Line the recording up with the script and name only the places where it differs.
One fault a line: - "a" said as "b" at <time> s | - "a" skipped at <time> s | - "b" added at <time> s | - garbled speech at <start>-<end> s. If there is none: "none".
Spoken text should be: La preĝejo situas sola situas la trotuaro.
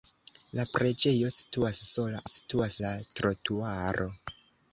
none